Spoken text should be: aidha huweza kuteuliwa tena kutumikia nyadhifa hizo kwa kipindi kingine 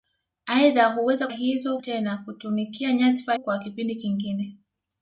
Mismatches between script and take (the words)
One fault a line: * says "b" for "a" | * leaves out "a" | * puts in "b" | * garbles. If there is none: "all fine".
* says "hizo" for "kuteuliwa"
* leaves out "hizo"